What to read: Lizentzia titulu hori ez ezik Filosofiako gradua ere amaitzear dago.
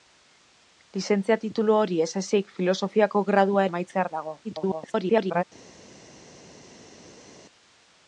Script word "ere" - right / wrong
wrong